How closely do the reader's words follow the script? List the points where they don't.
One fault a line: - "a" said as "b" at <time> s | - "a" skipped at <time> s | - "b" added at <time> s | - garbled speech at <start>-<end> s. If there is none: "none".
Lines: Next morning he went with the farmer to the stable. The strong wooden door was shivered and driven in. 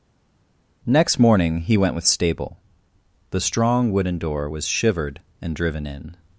- "the farmer to the" skipped at 2.0 s